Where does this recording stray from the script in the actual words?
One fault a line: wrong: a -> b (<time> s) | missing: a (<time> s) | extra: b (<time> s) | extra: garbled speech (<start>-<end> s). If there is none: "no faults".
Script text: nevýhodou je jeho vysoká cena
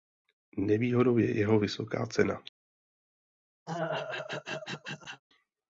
no faults